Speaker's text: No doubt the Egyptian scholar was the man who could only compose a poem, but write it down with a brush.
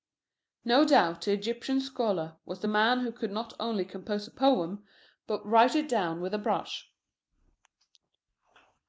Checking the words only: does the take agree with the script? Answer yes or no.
no